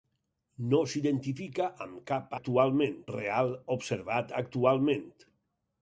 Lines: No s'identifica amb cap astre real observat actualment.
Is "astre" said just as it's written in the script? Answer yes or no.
no